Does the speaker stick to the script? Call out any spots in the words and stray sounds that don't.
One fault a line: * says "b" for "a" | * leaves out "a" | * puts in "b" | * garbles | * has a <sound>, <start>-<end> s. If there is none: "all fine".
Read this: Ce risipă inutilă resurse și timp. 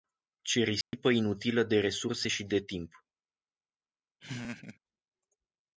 * has a dropout, 0.8-0.9 s
* puts in "de"
* puts in "de"
* has a laugh, 4.2-4.8 s